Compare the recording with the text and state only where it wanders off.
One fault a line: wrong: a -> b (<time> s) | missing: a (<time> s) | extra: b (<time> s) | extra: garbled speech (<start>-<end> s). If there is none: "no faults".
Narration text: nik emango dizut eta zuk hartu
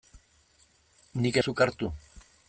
missing: emango dizut eta (1.4 s)